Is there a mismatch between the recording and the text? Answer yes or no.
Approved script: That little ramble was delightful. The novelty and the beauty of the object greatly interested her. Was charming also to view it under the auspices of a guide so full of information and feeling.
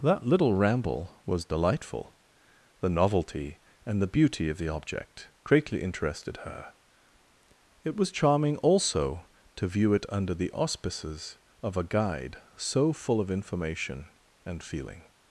yes